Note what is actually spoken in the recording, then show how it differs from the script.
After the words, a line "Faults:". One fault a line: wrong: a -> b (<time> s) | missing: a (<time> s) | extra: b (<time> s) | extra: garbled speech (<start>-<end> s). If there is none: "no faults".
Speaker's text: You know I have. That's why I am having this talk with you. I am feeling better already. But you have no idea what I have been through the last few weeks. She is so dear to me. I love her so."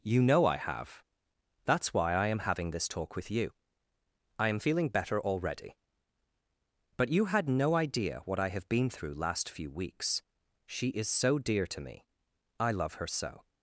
You know I have. That's why I am having this talk with you. I am feeling better already. But you had no idea what I have been through last few weeks. She is so dear to me. I love her so."
Faults:
wrong: have -> had (7.3 s)
missing: the (9.1 s)